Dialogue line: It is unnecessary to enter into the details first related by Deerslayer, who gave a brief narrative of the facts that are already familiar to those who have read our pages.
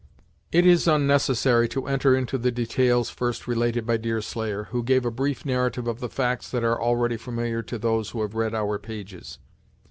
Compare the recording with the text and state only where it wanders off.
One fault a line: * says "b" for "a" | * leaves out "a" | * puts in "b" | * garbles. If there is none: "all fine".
all fine